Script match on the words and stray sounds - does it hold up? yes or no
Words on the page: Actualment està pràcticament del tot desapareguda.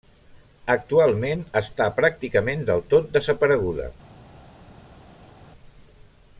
yes